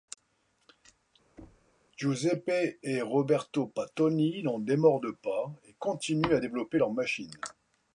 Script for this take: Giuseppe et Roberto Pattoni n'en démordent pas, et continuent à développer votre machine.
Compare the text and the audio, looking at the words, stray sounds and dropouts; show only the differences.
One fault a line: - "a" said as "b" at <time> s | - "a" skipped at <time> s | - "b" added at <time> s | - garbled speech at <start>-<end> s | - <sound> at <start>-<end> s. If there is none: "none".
- thud at 1.4-1.7 s
- "votre" said as "leur" at 6.8 s